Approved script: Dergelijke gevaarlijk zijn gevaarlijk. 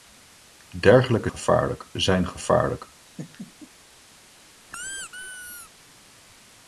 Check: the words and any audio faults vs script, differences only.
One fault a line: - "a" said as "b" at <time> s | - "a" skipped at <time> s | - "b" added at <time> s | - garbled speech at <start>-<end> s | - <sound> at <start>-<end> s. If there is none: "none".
- laugh at 3.1-3.7 s
- squeak at 4.7-5.7 s